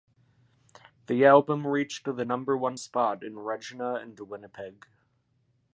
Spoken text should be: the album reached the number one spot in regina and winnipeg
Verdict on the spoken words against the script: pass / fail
pass